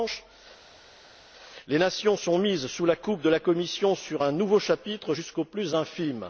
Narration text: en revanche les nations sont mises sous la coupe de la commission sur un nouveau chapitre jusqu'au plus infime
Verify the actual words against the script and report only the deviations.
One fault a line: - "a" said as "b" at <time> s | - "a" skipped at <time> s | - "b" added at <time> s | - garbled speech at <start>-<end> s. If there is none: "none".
none